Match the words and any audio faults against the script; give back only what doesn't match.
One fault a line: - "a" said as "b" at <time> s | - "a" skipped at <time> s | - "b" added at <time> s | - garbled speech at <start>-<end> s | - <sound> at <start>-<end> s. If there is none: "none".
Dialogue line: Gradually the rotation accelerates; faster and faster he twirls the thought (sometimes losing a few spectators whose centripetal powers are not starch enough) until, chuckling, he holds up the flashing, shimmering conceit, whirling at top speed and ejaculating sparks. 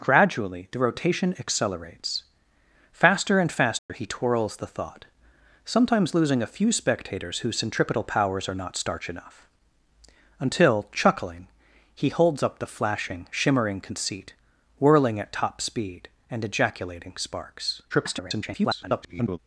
- dropout at 3.8-3.9 s
- garbled speech at 17.9-19.4 s